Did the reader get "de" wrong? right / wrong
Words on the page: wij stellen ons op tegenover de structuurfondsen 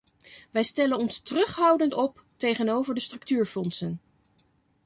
right